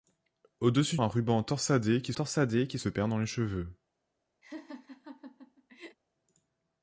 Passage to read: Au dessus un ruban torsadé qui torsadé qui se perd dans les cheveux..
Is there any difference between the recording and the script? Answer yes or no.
no